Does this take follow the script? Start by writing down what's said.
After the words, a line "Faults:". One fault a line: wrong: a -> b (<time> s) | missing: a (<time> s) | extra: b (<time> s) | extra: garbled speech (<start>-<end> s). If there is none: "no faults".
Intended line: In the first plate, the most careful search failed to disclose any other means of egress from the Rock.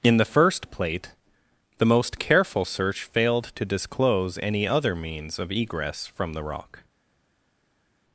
In the first plate, the most careful search failed to disclose any other means of egress from the Rock.
Faults:
no faults